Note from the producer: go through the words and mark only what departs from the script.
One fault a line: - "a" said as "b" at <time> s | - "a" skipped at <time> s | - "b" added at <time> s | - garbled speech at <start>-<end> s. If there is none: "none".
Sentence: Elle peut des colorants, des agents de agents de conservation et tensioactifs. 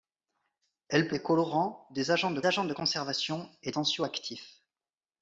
none